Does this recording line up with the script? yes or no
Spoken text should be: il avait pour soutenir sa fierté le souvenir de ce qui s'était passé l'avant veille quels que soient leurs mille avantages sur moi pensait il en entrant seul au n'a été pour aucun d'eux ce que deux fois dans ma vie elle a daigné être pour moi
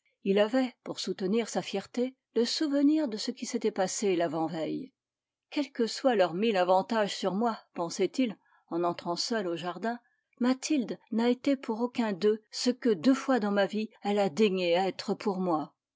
no